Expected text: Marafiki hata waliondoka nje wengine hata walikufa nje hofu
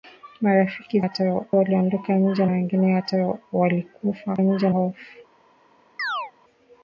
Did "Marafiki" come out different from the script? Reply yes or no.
no